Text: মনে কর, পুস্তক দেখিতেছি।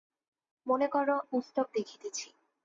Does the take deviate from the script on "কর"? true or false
false